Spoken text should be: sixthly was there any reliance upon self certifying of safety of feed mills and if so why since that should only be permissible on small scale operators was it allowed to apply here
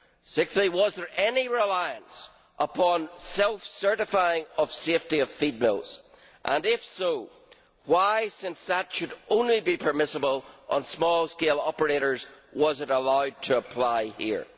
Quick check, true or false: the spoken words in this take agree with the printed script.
true